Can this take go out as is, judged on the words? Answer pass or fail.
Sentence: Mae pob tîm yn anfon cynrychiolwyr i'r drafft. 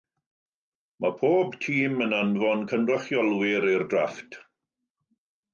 pass